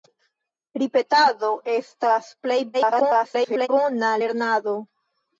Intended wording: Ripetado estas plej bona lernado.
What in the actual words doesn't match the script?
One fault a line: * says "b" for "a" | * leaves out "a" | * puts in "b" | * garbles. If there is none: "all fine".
* garbles